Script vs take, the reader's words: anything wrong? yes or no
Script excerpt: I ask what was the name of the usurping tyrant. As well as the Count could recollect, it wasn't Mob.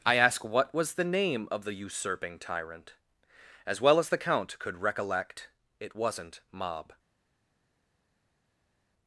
no